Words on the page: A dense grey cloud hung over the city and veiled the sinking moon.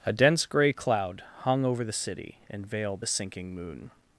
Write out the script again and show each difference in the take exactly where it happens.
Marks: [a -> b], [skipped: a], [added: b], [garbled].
A dense grey cloud hung over the city and veiled the sinking moon.